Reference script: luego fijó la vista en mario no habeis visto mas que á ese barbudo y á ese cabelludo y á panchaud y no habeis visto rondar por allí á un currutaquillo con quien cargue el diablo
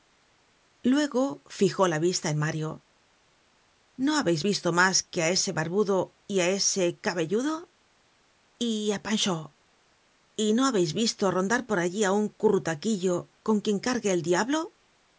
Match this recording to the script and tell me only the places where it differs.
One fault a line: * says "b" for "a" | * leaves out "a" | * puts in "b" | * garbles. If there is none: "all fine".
all fine